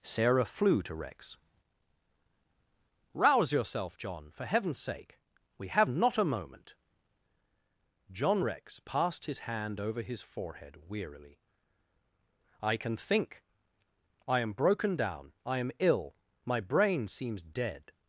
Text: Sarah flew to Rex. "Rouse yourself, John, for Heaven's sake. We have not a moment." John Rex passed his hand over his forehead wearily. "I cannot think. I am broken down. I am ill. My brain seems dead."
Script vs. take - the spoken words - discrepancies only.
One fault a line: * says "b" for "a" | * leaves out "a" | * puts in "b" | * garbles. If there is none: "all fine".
* says "can" for "cannot"